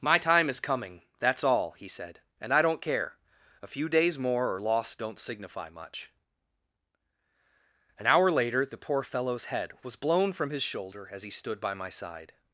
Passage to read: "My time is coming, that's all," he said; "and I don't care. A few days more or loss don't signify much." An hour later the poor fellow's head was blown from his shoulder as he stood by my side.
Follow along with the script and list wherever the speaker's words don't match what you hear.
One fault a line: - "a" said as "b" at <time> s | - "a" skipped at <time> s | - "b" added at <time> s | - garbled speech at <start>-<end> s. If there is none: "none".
none